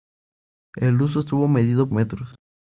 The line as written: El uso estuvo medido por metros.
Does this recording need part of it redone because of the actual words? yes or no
yes